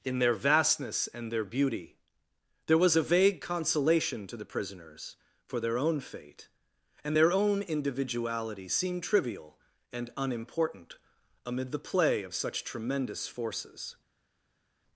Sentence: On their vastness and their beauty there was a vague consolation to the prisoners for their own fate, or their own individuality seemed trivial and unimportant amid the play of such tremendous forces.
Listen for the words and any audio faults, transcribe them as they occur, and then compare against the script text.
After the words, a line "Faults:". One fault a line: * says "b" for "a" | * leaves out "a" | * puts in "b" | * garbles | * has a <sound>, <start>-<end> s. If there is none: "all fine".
In their vastness and their beauty there was a vague consolation to the prisoners for their own fate, and their own individuality seemed trivial and unimportant amid the play of such tremendous forces.
Faults:
* says "In" for "On"
* says "and" for "or"